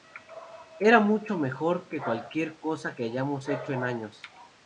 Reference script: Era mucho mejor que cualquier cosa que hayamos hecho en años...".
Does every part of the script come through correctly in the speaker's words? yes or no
yes